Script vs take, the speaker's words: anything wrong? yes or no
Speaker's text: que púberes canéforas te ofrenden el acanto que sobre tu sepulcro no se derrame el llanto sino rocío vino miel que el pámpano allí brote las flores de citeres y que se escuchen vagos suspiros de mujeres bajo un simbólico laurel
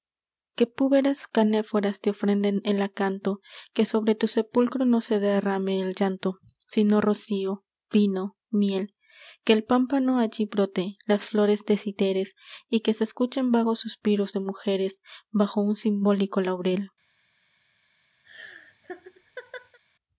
no